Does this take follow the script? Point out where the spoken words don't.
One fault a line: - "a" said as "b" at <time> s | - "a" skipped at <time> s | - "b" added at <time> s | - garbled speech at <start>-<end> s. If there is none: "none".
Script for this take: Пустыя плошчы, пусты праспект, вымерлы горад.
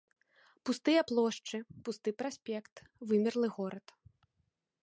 none